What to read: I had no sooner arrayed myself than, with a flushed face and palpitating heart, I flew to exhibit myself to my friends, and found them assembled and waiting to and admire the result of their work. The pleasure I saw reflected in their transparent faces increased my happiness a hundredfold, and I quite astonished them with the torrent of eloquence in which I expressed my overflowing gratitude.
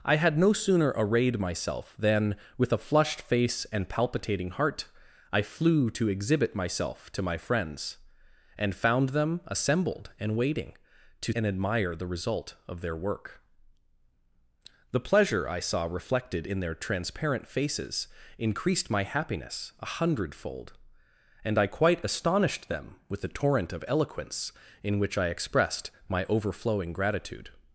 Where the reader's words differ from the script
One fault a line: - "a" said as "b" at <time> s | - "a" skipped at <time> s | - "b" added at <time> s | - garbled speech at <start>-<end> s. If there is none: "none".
none